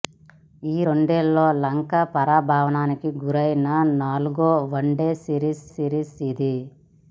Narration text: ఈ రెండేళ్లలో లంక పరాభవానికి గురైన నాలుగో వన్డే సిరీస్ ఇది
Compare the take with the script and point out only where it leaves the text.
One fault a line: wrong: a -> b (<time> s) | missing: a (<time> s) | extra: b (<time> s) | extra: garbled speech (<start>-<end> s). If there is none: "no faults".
extra: సిరీస్ (5.7 s)